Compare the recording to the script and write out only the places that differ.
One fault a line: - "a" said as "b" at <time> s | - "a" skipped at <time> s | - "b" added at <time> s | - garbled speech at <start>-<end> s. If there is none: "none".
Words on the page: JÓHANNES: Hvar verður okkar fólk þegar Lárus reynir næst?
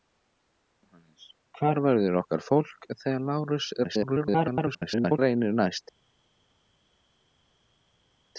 - garbled speech at 3.8-5.2 s